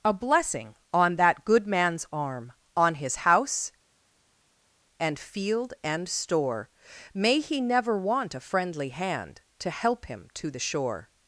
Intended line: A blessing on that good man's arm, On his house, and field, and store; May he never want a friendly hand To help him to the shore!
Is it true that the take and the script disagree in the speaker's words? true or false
false